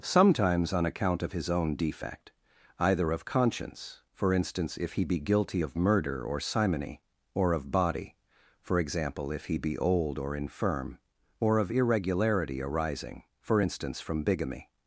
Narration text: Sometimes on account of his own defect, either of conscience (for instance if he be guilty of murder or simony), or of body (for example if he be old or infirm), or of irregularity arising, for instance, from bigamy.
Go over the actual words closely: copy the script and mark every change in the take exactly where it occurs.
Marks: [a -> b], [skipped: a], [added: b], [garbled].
Sometimes on account of his own defect, either of conscience (for instance if he be guilty of murder or simony), or of body (for example if he be old or infirm), or of irregularity arising, for instance, from bigamy.